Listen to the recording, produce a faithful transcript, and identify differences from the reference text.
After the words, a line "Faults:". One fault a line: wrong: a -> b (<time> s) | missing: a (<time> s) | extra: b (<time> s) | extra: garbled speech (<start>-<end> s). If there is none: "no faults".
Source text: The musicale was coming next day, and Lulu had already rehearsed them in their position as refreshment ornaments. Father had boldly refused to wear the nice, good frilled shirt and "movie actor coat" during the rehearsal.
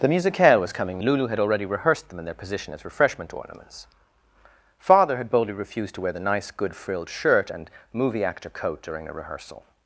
The musicale was coming Lulu had already rehearsed them in their position as refreshment ornaments. Father had boldly refused to wear the nice, good frilled shirt and "movie actor coat" during the rehearsal.
Faults:
missing: next day and (1.0 s)